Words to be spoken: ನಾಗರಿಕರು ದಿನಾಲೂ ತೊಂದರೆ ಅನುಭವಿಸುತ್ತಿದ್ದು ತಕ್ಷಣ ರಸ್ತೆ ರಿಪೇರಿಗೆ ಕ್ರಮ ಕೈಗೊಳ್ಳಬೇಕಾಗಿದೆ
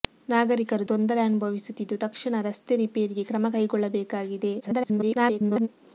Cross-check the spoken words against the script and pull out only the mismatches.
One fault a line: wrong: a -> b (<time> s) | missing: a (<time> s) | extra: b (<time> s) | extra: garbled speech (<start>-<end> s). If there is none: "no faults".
missing: ದಿನಾಲೂ (0.9 s)
extra: garbled speech (4.6-5.7 s)